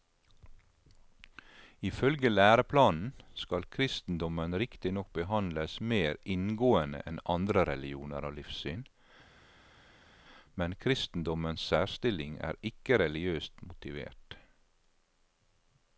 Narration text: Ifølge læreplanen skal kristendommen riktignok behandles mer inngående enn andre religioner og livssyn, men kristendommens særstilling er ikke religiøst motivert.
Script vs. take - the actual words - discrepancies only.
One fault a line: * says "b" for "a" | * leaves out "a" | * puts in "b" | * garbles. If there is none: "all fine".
all fine